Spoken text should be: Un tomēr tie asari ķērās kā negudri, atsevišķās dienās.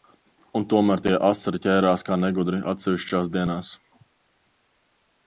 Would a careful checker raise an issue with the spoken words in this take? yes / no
no